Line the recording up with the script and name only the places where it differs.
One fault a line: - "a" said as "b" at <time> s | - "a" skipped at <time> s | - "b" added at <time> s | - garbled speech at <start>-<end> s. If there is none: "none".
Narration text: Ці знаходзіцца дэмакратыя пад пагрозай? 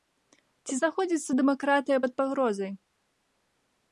none